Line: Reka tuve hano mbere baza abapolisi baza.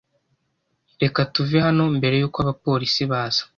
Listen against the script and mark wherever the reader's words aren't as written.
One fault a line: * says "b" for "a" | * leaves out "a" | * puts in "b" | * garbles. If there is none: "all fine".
* says "yuko" for "baza"